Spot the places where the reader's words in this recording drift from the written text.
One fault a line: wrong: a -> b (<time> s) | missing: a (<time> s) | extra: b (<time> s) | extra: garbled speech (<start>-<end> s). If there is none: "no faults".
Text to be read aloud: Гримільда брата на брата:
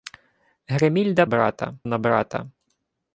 no faults